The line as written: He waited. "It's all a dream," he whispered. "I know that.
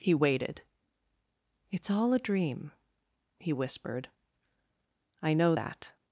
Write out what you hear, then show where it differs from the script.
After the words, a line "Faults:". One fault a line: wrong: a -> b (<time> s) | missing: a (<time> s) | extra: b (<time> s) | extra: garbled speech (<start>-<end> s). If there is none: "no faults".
He waited. "It's all a dream," he whispered. "I know that.
Faults:
no faults